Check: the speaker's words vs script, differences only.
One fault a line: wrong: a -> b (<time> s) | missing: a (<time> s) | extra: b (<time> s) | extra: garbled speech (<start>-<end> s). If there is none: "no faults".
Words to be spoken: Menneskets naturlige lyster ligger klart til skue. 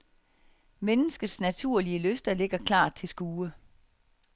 no faults